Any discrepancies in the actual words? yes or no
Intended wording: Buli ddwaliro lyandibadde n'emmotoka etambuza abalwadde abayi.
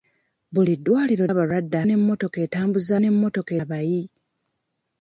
yes